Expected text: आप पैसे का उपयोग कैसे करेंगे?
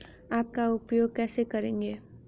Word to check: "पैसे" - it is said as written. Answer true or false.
false